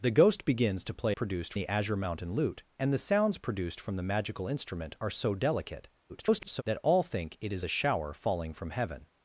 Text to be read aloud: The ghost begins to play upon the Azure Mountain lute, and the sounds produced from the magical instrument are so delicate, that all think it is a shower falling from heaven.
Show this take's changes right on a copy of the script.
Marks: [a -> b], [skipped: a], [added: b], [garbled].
The ghost begins to play [upon -> produced] the Azure Mountain lute, and the sounds produced from the magical instrument are so delicate, [garbled] that all think it is a shower falling from heaven.